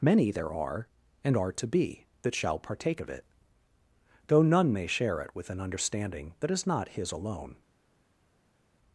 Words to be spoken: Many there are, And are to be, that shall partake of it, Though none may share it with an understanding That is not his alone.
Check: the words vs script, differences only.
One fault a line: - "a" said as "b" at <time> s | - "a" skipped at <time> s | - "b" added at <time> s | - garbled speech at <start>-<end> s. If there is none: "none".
none